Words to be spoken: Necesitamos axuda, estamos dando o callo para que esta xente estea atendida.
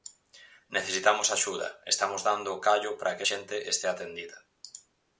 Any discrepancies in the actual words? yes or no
yes